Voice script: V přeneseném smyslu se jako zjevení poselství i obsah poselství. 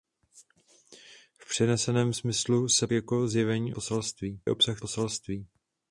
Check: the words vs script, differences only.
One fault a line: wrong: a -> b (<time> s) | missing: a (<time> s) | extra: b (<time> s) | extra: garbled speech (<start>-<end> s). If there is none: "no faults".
no faults